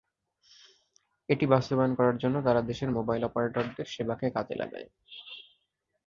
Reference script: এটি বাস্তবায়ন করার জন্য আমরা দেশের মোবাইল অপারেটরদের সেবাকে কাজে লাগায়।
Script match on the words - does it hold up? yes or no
no